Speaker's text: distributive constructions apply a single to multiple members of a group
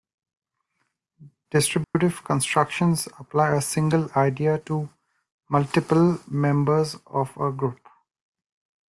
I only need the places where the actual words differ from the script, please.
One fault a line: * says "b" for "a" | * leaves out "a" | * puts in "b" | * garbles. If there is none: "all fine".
* puts in "idea"